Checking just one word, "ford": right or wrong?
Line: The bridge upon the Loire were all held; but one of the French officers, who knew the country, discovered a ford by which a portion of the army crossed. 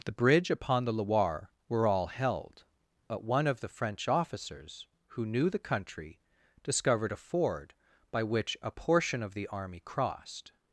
right